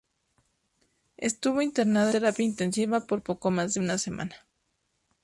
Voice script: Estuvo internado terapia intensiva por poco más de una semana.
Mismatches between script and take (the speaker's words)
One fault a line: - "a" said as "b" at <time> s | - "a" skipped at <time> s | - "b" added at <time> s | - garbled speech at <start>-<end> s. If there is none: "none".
none